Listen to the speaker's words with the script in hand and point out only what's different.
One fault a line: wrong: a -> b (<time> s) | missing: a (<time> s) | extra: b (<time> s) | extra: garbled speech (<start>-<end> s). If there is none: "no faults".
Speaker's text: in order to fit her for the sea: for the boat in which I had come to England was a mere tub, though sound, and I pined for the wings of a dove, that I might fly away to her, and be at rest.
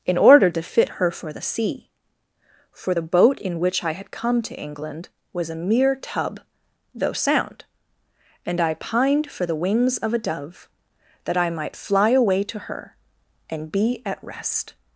no faults